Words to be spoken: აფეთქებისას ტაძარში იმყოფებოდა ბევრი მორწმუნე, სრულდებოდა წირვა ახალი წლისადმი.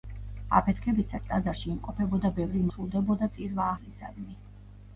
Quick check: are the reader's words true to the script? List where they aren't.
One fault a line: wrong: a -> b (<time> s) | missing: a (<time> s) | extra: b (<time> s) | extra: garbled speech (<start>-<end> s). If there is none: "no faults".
missing: მორწმუნე (2.6 s)
missing: ახალი (3.7 s)